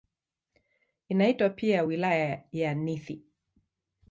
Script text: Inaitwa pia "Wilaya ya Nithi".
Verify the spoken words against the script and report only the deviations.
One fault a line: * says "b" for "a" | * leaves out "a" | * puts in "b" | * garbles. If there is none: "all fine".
all fine